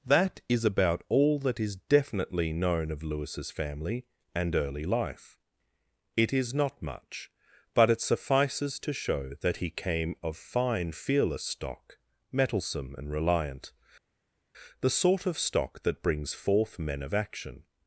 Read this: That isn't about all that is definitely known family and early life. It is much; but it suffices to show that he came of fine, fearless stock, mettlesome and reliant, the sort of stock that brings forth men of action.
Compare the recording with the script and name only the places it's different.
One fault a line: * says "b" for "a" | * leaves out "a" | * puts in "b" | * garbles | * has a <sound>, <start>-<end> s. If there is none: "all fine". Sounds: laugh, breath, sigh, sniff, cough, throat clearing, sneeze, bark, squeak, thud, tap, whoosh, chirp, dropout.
* says "is" for "isn't"
* puts in "of Lewis's"
* puts in "not"